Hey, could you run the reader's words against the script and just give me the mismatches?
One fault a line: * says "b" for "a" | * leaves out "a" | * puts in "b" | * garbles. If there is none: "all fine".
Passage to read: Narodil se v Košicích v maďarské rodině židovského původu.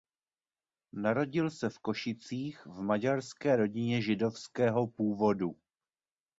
all fine